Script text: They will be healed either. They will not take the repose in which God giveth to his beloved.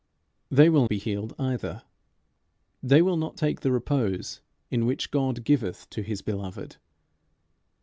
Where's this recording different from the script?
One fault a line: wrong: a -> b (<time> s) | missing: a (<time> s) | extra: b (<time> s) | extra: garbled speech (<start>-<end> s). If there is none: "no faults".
no faults